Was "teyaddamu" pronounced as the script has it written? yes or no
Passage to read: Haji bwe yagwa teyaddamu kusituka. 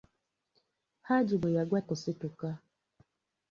no